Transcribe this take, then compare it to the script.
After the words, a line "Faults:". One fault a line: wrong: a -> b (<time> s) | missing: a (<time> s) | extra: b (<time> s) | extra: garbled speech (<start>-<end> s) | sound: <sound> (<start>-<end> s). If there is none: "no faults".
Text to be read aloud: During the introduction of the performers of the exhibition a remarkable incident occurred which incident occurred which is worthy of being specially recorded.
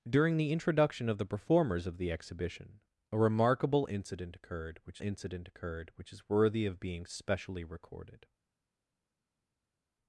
During the introduction of the performers of the exhibition a remarkable incident occurred which incident occurred which is worthy of being specially recorded.
Faults:
no faults